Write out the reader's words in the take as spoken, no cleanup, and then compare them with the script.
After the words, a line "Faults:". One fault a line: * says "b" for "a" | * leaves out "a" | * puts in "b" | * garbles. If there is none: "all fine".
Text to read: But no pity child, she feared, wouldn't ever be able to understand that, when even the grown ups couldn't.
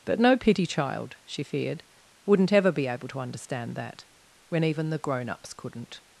But no pity child, she feared, wouldn't ever be able to understand that, when even the grown ups couldn't.
Faults:
all fine